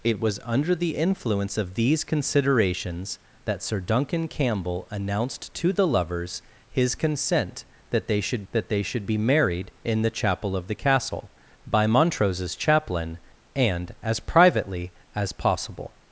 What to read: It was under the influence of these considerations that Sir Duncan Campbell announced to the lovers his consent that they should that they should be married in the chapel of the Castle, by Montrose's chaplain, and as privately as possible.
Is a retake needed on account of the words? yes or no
no